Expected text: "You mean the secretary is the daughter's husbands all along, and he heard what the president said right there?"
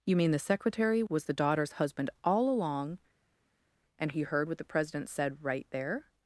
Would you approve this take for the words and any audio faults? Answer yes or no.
no